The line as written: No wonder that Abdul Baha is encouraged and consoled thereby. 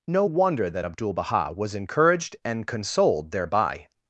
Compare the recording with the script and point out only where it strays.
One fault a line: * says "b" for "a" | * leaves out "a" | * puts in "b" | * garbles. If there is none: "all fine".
* says "was" for "is"